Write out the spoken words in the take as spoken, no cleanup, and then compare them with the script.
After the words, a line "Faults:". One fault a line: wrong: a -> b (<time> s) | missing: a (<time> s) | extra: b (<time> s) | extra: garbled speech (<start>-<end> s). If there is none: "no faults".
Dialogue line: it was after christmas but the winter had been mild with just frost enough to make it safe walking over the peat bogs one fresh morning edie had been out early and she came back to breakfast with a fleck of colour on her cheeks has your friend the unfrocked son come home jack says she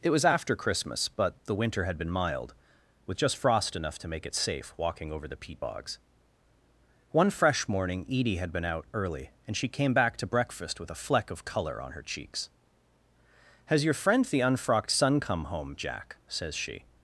it was after christmas but the winter had been mild with just frost enough to make it safe walking over the peat bogs one fresh morning edie had been out early and she came back to breakfast with a fleck of colour on her cheeks has your friend the unfrocked son come home jack says she
Faults:
no faults